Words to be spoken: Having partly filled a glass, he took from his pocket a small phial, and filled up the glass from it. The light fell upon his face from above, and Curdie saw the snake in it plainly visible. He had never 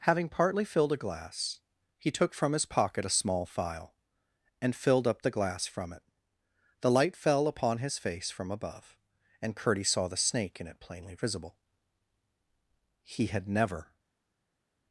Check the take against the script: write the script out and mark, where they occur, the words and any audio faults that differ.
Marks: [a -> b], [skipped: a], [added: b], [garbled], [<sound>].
Having partly filled a glass, he took from his pocket a small phial, and filled up the glass from it. The light fell upon his face from above, and Curdie saw the snake in it plainly visible. He had never